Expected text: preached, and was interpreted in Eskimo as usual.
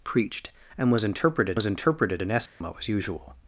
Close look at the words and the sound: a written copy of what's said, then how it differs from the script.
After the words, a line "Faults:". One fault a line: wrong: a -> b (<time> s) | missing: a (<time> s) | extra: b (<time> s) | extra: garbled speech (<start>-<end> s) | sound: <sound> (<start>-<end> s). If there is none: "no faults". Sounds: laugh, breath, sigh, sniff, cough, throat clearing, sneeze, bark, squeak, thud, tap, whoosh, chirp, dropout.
preached, and was interpreted was interpreted in Eskimo as usual.
Faults:
extra: was interpreted (1.5 s)
sound: dropout (2.5-2.6 s)